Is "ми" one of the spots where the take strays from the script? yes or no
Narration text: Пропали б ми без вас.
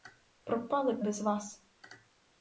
yes